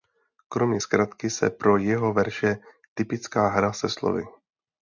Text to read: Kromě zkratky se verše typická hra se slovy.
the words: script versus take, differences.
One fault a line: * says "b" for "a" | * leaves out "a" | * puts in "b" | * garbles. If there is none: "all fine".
* puts in "pro jeho"